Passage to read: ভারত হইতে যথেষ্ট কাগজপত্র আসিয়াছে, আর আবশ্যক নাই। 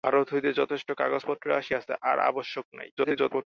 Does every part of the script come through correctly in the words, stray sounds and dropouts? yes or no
no